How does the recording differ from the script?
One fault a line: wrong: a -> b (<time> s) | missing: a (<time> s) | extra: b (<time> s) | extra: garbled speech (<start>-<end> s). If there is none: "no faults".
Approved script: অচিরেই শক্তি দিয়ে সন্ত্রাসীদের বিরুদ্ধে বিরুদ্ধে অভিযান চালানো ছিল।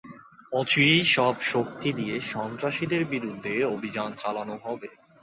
extra: সব (1.2 s)
missing: বিরুদ্ধে (3.5 s)
wrong: ছিল -> হবে (4.6 s)